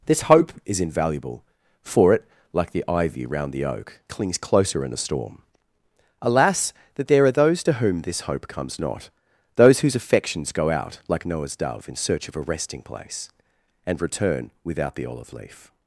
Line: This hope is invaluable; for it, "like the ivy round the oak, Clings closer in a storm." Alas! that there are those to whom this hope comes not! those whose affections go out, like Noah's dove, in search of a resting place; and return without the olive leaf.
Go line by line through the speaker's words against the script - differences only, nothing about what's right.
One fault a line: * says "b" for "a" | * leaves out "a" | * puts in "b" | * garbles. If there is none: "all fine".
all fine